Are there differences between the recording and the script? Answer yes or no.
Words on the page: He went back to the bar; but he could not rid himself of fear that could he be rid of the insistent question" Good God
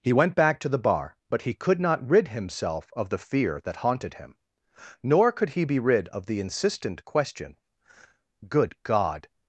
yes